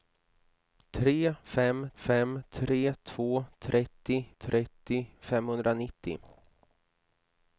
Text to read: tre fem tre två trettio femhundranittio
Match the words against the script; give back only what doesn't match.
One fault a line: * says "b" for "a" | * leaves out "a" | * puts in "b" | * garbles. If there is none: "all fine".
* puts in "fem"
* puts in "trettio"